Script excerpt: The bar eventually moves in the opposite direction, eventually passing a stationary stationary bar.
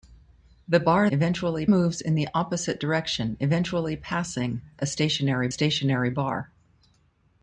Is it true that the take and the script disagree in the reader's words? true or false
false